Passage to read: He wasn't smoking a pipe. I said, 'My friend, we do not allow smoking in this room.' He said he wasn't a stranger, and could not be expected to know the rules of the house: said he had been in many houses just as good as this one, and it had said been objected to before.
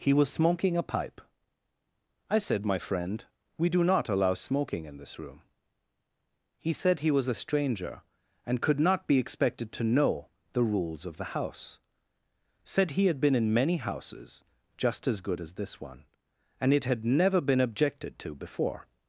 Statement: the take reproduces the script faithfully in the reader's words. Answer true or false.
false